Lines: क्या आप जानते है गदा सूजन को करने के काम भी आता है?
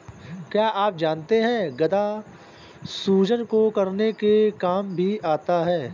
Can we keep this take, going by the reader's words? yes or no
yes